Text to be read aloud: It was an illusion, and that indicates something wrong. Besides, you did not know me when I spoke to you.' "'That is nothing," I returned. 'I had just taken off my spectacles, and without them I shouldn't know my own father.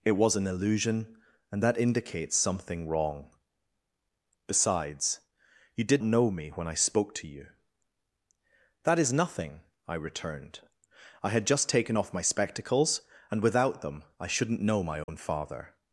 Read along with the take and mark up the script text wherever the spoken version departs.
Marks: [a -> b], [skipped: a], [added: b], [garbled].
It was an illusion, and that indicates something wrong. Besides, you did [skipped: not] know me when I spoke to you.' "'That is nothing," I returned. 'I had just taken off my spectacles, and without them I shouldn't know my own father.